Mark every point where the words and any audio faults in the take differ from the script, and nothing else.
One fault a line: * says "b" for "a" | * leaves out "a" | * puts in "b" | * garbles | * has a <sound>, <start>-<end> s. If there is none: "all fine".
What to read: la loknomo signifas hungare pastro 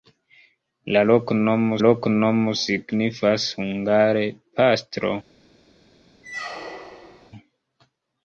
* puts in "loknomo"
* has a squeak, 6.2-7.3 s